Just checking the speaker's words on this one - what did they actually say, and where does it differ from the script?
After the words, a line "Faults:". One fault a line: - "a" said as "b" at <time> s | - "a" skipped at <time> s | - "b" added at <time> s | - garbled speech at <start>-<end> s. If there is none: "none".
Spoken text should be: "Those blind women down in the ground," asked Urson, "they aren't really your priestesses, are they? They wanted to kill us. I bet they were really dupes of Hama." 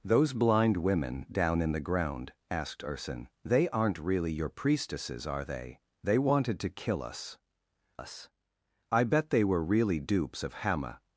"Those blind women down in the ground," asked Urson, "they aren't really your priestesses, are they? They wanted to kill us us. I bet they were really dupes of Hama."
Faults:
- "us" added at 8.0 s